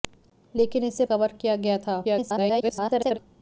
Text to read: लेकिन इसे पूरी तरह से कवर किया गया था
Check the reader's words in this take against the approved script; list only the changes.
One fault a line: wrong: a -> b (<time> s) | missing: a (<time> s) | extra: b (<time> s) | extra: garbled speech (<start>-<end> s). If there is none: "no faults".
missing: पूरी तरह से (1.1 s)
extra: garbled speech (2.0-3.2 s)